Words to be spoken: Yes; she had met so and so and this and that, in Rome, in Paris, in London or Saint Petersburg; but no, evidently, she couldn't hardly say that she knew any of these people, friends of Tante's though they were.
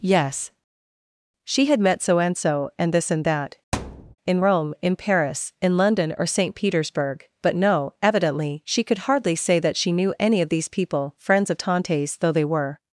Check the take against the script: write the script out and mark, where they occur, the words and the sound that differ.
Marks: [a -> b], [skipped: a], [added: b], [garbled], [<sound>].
Yes; she had met so and so and this and that, [thud] in Rome, in Paris, in London or Saint Petersburg; but no, evidently, she [couldn't -> could] hardly say that she knew any of these people, friends of Tante's though they were.